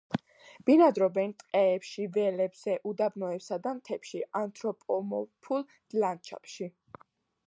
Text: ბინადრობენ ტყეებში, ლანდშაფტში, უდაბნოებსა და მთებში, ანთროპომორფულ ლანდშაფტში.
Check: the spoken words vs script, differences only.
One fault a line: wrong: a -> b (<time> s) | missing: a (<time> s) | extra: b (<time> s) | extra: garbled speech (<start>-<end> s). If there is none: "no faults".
wrong: ლანდშაფტში -> ველებზე (2.1 s)